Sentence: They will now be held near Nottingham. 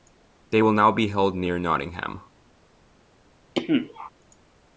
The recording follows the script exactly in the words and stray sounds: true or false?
false